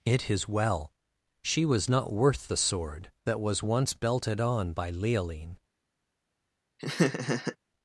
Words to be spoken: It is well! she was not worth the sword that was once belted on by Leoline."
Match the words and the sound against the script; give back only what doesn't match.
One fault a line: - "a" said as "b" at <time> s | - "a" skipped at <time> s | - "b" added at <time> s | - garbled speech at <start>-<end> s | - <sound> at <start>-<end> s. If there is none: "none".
- laugh at 6.8-7.6 s